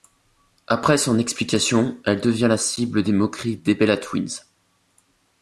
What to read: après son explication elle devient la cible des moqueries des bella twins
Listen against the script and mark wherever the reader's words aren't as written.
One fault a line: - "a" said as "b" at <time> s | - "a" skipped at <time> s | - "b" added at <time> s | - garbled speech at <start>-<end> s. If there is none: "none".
none